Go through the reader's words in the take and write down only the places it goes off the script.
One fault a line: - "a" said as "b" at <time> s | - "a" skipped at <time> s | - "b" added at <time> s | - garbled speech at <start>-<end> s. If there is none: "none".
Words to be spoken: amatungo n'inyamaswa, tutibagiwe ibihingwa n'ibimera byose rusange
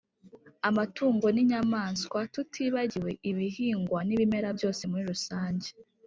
- "muri" added at 4.9 s